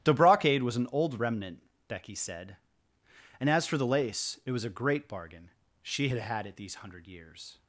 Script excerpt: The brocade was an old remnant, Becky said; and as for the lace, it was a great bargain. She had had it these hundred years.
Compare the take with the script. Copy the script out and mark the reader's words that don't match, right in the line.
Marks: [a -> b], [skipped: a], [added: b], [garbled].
The brocade was an old remnant, Becky said; and as for the lace, it was a great bargain. She had had it these hundred years.